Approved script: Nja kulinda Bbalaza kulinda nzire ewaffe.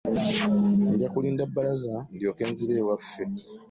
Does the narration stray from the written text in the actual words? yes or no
yes